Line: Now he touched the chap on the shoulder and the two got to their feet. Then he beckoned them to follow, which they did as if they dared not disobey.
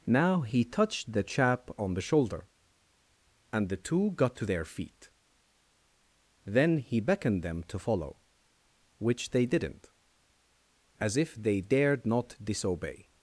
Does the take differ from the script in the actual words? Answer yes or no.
yes